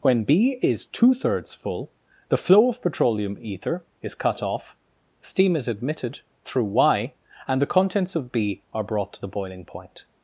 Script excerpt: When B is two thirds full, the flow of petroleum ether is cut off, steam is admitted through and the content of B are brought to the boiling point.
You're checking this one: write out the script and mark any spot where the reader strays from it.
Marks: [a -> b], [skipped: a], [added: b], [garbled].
When B is two thirds full, the flow of petroleum ether is cut off, steam is admitted through [added: y] and the [content -> contents] of B are brought to the boiling point.